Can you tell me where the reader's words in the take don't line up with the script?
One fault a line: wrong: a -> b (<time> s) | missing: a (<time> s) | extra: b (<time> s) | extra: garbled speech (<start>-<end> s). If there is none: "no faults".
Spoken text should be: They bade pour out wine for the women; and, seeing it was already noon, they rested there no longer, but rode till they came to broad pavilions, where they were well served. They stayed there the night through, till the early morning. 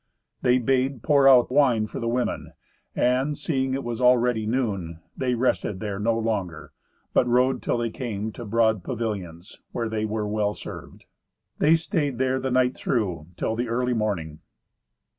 no faults